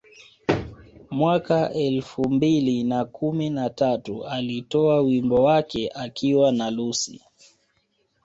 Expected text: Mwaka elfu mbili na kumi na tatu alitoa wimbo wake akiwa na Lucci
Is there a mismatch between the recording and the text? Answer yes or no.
no